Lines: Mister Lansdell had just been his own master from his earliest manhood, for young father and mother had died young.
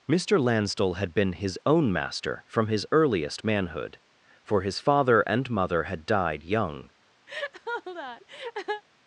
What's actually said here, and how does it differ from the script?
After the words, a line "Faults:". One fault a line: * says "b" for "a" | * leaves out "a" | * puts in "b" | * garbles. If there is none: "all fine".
Mister Lansdell had been his own master from his earliest manhood, for his father and mother had died young.
Faults:
* leaves out "just"
* says "his" for "young"